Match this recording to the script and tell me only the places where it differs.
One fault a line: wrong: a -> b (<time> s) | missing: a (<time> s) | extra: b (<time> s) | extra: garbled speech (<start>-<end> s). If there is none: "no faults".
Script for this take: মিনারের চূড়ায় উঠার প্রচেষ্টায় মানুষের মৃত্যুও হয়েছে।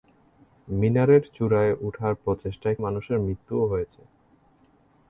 no faults